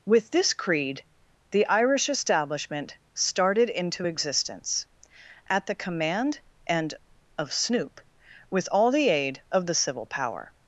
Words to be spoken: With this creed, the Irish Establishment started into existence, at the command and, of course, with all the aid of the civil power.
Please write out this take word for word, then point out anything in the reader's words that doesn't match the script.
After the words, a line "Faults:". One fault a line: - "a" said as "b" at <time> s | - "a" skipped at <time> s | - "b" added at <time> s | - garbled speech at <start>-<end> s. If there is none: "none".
With this creed, the Irish Establishment started into existence, at the command and, of snoop, with all the aid of the civil power.
Faults:
- "course" said as "snoop" at 7.5 s